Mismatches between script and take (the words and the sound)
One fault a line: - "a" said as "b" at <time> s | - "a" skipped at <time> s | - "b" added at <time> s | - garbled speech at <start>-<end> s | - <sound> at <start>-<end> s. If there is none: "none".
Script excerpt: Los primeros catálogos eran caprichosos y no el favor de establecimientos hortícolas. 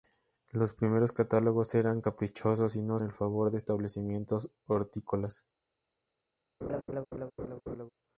- laugh at 6.6-7.9 s